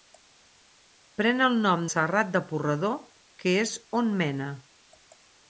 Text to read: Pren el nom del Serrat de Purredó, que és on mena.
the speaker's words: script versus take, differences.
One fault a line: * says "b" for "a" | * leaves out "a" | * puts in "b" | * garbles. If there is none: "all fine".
* leaves out "del"